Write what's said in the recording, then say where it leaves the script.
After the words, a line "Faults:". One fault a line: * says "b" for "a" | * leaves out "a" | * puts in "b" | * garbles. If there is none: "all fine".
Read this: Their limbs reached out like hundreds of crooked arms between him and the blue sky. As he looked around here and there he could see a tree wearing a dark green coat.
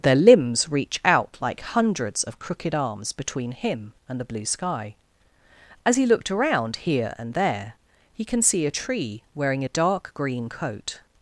Their limbs reach out like hundreds of crooked arms between him and the blue sky. As he looked around here and there he can see a tree wearing a dark green coat.
Faults:
* says "reach" for "reached"
* says "can" for "could"